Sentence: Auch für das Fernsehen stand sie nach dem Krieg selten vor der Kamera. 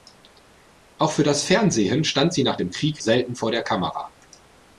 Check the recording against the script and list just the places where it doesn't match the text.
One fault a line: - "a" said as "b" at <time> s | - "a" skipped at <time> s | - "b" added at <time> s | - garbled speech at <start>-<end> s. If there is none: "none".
none